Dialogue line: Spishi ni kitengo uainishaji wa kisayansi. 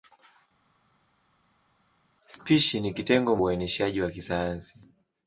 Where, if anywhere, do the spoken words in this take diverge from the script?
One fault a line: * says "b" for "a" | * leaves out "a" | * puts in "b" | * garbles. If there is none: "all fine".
all fine